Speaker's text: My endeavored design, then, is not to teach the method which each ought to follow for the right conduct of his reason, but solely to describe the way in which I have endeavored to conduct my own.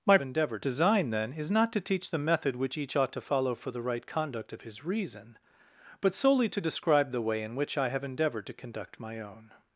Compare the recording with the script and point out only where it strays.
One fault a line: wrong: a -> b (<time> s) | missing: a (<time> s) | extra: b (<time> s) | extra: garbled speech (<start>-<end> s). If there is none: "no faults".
no faults